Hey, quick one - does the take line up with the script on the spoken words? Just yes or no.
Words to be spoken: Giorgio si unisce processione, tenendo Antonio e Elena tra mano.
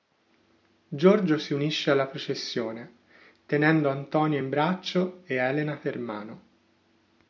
no